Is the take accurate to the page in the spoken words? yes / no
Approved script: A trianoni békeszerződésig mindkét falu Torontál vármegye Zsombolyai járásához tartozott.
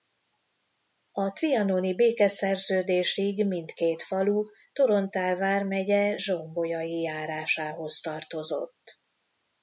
yes